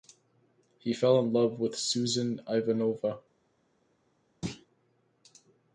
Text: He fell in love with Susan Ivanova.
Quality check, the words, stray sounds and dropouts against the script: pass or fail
fail